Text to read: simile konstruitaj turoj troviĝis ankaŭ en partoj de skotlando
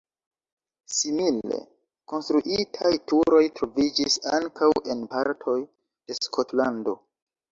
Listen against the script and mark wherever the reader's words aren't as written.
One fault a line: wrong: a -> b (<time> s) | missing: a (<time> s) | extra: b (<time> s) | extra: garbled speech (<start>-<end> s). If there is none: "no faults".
no faults